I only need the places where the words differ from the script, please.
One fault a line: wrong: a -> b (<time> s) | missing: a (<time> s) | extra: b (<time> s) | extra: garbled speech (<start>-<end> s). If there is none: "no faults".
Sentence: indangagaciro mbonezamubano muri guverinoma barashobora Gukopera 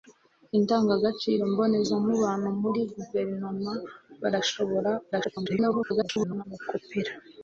extra: garbled speech (5.1-6.4 s)